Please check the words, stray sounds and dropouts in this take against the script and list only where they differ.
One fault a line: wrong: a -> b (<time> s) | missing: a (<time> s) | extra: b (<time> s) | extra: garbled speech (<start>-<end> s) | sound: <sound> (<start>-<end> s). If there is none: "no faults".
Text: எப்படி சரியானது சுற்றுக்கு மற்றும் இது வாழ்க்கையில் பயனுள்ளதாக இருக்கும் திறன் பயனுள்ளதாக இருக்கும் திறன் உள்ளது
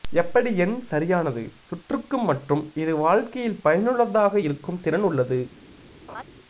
extra: எண் (0.6 s)
missing: பயனுள்ளதாக இருக்கும் திறன் (5.1 s)
sound: laugh (6.1-6.2 s)